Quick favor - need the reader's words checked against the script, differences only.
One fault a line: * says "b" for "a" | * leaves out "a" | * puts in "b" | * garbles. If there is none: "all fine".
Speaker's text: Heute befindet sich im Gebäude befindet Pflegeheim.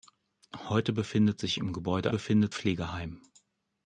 all fine